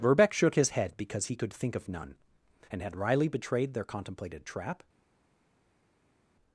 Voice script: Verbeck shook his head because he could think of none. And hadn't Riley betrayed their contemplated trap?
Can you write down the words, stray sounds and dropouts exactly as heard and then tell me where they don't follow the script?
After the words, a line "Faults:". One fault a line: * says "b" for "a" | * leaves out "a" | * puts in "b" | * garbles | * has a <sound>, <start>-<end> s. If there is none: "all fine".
Verbeck shook his head because he could think of none. And had Riley betrayed their contemplated trap?
Faults:
* says "had" for "hadn't"